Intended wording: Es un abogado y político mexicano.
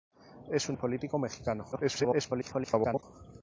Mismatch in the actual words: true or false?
true